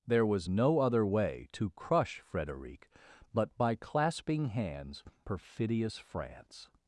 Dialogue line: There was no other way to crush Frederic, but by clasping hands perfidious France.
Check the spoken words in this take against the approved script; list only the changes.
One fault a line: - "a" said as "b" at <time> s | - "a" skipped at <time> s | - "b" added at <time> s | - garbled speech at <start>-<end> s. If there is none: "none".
none